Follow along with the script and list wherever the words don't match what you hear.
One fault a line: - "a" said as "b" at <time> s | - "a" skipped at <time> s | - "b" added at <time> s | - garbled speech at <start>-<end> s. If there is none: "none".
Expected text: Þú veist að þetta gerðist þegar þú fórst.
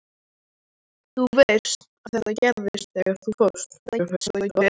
- garbled speech at 3.9-4.7 s